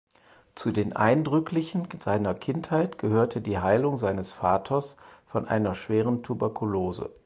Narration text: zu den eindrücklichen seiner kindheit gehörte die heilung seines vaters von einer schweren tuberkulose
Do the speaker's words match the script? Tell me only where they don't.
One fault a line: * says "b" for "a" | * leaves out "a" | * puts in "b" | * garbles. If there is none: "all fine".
all fine